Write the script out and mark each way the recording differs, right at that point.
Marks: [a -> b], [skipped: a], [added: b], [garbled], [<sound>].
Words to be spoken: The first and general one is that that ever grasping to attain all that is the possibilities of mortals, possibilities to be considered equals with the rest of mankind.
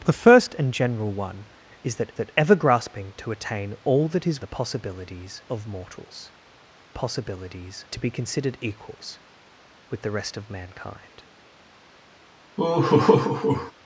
The first and general one is that that ever grasping to attain all that is the possibilities of mortals, possibilities to be considered equals with the rest of mankind. [laugh]